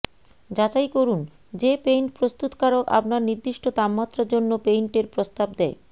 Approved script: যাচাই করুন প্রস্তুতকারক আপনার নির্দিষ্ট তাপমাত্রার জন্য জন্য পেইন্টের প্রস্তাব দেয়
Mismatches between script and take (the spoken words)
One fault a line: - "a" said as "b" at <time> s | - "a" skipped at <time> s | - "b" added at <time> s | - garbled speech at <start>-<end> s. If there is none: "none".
- "যে পেইন্ট" added at 1.5 s
- "জন্য" skipped at 4.5 s